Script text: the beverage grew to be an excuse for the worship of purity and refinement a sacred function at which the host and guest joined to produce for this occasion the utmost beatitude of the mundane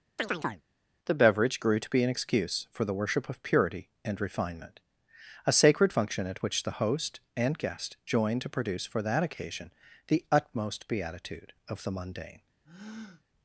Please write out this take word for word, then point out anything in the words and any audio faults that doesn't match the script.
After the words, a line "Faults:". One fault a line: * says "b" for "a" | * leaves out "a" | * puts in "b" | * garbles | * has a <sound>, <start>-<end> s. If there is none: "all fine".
the beverage grew to be an excuse for the worship of purity and refinement a sacred function at which the host and guest joined to produce for that occasion the utmost beatitude of the mundane
Faults:
* has a chirp, 0.2-0.6 s
* says "that" for "this"
* has a breath, 12.6-13.2 s